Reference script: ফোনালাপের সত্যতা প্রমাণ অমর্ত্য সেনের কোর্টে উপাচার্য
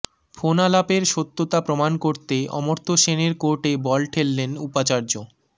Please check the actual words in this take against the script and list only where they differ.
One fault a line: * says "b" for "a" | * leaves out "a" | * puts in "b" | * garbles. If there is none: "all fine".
* puts in "করতে"
* puts in "বল ঠেললেন"